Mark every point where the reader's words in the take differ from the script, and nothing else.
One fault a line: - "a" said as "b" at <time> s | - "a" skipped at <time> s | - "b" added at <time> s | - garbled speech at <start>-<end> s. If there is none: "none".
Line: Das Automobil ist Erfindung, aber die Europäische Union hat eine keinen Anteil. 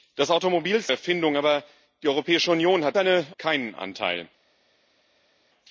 none